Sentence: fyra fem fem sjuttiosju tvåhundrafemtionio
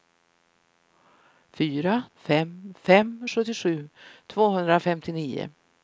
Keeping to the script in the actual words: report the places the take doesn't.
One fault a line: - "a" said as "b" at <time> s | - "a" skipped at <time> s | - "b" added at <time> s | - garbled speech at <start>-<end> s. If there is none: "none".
none